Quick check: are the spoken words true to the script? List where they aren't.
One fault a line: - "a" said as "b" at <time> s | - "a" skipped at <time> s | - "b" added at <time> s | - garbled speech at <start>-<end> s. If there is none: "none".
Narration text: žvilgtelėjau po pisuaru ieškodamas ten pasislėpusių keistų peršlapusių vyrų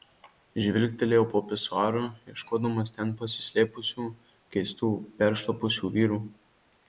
none